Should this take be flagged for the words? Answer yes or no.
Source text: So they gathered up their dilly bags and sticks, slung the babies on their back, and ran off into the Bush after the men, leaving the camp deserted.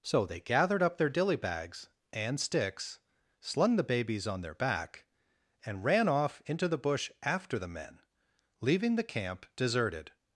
no